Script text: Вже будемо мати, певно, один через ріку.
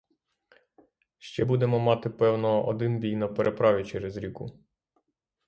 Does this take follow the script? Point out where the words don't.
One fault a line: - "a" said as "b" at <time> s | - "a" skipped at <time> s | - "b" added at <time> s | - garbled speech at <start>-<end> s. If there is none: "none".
- "Вже" said as "Ще" at 1.2 s
- "бій на переправі" added at 3.0 s